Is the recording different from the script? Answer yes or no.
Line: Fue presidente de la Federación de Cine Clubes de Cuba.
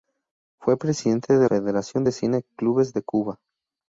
yes